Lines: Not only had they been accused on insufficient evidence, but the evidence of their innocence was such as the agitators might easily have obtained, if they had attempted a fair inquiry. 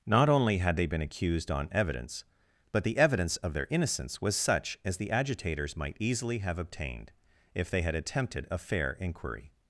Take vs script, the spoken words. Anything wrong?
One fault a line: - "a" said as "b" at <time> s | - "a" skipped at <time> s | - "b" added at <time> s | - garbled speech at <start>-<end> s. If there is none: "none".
- "insufficient" skipped at 1.7 s